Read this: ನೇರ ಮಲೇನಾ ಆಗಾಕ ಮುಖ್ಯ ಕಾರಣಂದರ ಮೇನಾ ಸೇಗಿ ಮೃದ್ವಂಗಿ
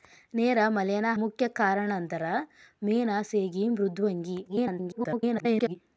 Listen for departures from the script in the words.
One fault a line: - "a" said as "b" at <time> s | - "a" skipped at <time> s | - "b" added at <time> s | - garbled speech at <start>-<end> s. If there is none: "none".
- "ಆಗಾಕ" skipped at 1.1 s
- garbled speech at 4.5-5.8 s